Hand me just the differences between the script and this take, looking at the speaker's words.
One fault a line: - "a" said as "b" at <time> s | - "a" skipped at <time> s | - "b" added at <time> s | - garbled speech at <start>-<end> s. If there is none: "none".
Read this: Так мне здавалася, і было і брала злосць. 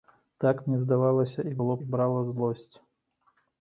none